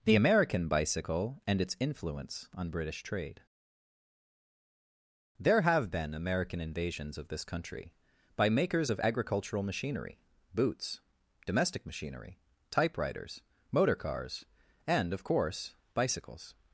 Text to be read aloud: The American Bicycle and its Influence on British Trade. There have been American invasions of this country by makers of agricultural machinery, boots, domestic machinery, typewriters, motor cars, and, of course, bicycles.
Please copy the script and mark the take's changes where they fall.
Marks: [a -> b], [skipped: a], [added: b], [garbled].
The American Bicycle and its Influence on British Trade. There have been American invasions of this country by makers of agricultural machinery, boots, domestic machinery, typewriters, motor cars, and, of course, bicycles.